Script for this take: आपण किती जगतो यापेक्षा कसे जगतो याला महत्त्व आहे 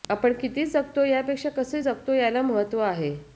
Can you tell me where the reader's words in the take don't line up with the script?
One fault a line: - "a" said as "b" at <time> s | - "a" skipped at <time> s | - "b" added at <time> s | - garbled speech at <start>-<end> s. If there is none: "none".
none